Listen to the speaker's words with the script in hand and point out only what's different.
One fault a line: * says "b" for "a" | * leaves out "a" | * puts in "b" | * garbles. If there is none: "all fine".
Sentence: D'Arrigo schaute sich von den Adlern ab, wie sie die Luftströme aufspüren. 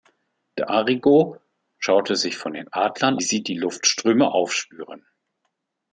* leaves out "ab wie"